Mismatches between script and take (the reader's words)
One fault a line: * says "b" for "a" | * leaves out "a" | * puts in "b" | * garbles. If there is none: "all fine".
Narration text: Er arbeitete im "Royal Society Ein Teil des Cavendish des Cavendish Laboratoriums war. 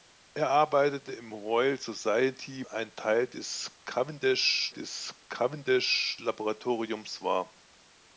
all fine